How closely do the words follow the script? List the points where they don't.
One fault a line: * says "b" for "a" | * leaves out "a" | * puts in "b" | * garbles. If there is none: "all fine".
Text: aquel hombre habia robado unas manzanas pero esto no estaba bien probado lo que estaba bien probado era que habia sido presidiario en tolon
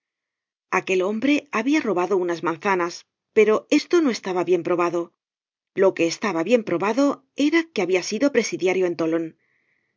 all fine